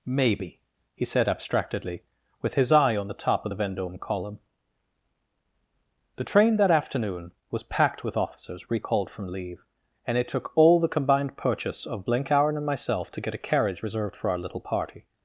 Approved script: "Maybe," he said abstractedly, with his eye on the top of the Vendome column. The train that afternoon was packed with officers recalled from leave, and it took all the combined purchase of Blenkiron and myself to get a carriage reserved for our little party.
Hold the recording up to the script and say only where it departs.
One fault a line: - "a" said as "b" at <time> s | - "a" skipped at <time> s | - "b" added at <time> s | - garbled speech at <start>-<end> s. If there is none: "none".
none